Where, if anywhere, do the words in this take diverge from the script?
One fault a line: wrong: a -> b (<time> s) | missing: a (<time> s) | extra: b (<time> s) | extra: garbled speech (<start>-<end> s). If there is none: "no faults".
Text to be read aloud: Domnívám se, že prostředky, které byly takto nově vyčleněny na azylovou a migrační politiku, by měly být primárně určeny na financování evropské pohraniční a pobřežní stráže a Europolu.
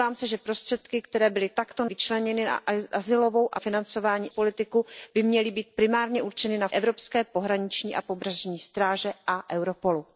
missing: nově (1.9 s)
wrong: migrační -> financování (3.5 s)
missing: financování (6.7 s)